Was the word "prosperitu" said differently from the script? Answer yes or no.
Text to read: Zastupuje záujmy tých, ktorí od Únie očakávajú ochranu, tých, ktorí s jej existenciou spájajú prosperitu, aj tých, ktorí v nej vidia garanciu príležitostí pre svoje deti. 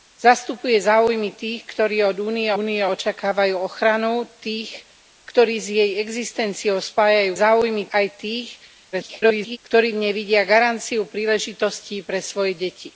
yes